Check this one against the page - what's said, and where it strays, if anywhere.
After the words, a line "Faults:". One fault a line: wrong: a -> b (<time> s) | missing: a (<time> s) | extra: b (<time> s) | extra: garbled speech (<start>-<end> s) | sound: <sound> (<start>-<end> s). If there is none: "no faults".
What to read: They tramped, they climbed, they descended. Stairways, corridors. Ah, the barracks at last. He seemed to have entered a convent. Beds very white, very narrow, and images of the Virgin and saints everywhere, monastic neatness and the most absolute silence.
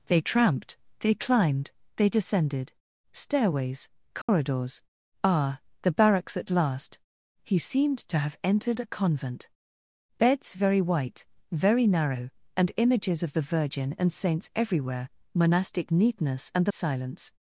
They tramped, they climbed, they descended. Stairways, corridors. Ah, the barracks at last. He seemed to have entered a convent. Beds very white, very narrow, and images of the Virgin and saints everywhere, monastic neatness and the silence.
Faults:
sound: dropout (4.2-4.3 s)
missing: most absolute (16.7 s)